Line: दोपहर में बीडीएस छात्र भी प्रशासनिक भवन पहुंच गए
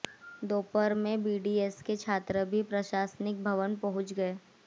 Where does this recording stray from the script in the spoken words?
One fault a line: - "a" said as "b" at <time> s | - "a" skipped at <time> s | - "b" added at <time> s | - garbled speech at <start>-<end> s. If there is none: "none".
- "के" added at 1.8 s